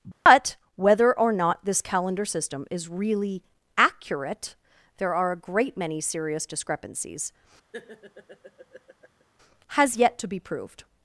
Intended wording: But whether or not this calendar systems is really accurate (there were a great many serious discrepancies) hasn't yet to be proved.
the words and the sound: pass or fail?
fail